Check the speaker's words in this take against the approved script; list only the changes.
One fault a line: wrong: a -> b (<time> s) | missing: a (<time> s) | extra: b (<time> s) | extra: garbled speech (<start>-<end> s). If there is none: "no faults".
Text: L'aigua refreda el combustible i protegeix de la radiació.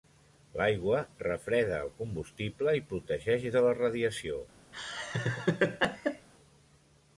no faults